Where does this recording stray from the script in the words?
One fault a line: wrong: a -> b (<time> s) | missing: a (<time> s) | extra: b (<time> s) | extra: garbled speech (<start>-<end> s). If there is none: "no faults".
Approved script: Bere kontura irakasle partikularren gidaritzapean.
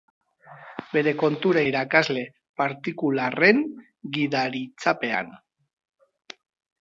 no faults